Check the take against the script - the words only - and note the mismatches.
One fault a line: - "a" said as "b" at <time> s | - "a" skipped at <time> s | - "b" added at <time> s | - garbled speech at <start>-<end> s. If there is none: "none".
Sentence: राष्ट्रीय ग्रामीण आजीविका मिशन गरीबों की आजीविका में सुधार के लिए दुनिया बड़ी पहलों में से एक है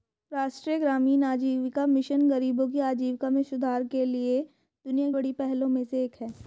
none